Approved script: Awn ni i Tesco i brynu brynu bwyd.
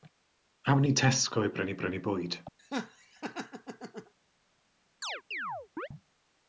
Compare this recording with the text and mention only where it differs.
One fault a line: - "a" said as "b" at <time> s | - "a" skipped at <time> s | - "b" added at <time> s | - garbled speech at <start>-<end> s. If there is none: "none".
none